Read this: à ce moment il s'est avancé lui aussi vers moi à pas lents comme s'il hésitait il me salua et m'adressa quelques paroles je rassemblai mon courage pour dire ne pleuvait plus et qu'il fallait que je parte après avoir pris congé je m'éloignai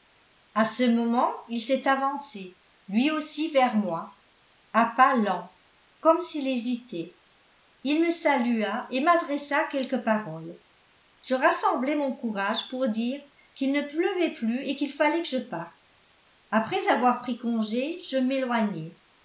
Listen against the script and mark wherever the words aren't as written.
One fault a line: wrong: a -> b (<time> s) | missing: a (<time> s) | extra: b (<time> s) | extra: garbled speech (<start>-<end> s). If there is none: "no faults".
extra: qu'il (13.5 s)